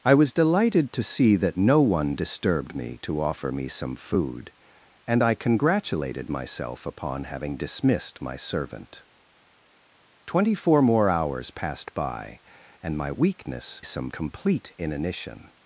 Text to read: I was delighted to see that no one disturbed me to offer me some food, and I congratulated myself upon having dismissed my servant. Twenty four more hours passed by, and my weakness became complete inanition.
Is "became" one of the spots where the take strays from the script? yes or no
yes